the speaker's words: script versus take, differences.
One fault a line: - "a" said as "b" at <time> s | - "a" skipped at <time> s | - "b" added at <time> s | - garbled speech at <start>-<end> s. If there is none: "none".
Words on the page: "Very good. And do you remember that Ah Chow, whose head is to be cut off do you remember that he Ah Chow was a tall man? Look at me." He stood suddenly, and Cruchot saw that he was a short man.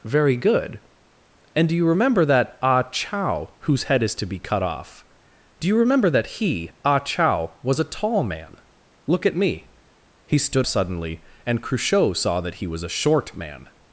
none